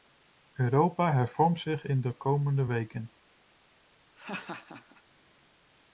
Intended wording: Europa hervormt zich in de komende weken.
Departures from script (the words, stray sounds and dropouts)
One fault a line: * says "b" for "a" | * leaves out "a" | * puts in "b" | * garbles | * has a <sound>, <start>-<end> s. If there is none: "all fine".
* has a laugh, 4.2-5.0 s